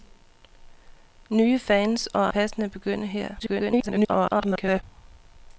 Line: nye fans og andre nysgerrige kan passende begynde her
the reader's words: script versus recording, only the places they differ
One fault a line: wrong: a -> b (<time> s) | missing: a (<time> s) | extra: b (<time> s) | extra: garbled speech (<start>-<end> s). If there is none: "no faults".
missing: andre nysgerrige kan (2.3 s)
extra: garbled speech (3.4-4.8 s)